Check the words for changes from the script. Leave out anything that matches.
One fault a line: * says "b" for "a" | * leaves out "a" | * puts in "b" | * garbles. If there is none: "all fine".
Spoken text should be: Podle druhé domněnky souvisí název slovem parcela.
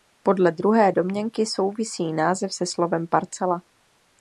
* puts in "se"